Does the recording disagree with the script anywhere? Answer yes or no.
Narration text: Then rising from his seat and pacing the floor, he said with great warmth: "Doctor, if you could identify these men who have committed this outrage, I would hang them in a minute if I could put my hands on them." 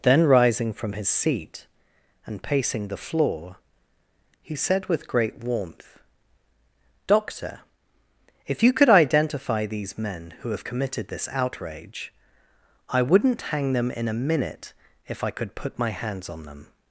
yes